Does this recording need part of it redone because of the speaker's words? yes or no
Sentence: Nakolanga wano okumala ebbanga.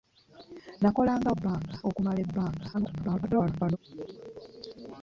yes